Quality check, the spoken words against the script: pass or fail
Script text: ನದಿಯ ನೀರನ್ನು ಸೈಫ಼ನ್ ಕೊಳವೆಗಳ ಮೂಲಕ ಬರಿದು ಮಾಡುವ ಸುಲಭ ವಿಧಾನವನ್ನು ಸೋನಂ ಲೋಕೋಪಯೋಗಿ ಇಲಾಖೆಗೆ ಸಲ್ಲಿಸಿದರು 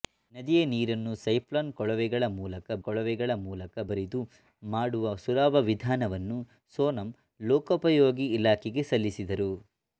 fail